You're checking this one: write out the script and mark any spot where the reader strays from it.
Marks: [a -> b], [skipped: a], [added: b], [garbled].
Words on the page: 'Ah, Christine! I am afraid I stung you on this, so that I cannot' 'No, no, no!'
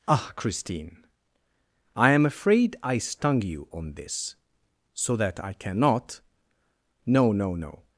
'Ah, Christine! I am afraid I stung you on this, so that I cannot' 'No, no, no!'